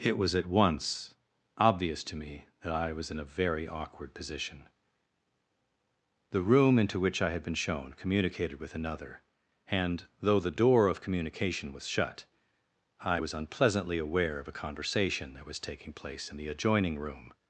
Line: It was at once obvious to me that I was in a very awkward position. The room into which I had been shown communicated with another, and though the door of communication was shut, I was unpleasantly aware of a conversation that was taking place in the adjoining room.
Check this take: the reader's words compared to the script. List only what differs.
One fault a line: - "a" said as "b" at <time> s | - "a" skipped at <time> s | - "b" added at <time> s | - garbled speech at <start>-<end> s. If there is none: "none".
none